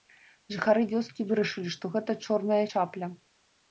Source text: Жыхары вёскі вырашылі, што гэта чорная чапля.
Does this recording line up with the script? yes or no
yes